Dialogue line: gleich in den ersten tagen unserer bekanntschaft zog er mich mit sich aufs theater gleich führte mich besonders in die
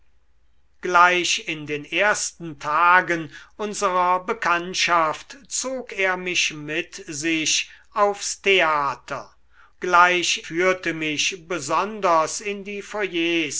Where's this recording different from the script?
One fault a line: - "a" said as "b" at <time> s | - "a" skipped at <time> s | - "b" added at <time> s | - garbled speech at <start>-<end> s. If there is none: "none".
none